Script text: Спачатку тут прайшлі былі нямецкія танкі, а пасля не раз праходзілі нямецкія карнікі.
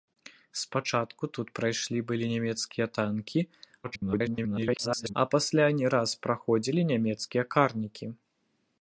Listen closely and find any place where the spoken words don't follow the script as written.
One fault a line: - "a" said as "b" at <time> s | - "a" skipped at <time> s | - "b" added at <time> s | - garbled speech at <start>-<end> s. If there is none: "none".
- garbled speech at 3.8-5.1 s